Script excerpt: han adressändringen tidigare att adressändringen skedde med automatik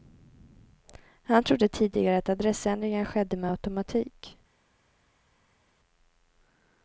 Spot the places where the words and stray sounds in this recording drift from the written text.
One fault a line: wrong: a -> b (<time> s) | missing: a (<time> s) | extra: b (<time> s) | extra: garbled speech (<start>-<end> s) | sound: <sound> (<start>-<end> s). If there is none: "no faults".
wrong: adressändringen -> trodde (1.4 s)